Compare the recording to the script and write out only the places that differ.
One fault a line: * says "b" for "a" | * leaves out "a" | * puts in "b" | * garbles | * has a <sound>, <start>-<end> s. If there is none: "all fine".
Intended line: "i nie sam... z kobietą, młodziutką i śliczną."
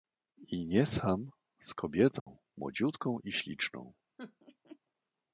* has a dropout, 2.2-2.3 s
* has a laugh, 4.2-4.8 s